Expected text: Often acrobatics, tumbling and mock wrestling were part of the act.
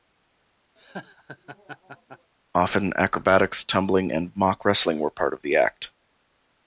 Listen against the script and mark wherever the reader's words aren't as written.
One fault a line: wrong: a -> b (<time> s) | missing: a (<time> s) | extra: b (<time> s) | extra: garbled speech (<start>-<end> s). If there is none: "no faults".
no faults